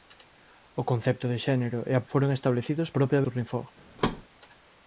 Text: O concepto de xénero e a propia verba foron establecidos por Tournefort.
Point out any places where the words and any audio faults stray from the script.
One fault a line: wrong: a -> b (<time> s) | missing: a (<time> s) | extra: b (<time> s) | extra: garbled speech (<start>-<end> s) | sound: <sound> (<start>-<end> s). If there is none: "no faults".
missing: propia verba (2.0 s)
wrong: por -> propia (3.0 s)
sound: thud (4.0-4.2 s)